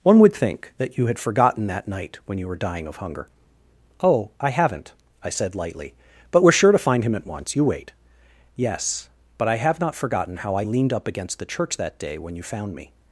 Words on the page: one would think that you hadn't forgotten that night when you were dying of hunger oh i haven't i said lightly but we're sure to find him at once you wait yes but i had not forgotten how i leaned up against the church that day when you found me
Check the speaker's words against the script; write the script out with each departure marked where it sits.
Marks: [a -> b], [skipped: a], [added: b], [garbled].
one would think that you [hadn't -> had] forgotten that night when you were dying of hunger oh i haven't i said lightly but we're sure to find him at once you wait yes but i [had -> have] not forgotten how i leaned up against the church that day when you found me